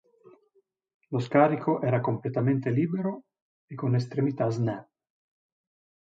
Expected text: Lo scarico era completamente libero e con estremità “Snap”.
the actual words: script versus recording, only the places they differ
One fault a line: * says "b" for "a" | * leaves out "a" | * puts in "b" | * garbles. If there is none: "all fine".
all fine